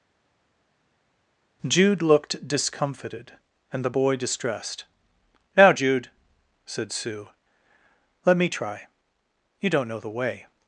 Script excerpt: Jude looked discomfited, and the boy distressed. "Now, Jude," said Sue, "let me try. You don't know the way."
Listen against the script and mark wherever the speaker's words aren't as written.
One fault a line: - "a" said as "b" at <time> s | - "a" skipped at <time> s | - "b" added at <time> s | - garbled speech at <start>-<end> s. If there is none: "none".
none